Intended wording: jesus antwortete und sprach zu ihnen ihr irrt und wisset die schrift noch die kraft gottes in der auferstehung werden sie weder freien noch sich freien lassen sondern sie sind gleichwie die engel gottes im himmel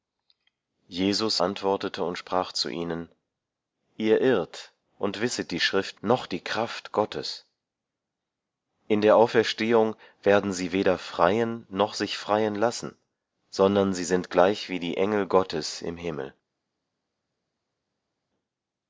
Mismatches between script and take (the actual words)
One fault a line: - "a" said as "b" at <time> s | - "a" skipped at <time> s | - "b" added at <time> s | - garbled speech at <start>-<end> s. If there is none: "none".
none